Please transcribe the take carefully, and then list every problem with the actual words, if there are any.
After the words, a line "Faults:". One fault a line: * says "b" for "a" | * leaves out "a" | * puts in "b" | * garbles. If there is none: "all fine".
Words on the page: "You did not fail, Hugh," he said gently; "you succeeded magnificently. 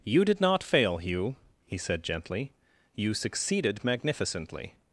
"You did not fail, Hugh," he said gently; "you succeeded magnificently.
Faults:
all fine